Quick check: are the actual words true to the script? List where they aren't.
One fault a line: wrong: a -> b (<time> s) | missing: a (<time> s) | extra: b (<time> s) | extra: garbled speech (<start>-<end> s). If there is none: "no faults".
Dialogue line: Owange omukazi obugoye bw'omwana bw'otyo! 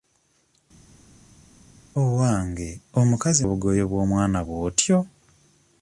no faults